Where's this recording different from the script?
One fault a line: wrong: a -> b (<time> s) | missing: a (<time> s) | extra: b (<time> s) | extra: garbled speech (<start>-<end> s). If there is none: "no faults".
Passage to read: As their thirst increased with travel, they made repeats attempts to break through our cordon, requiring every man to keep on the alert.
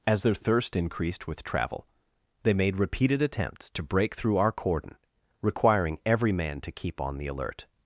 wrong: repeats -> repeated (2.8 s)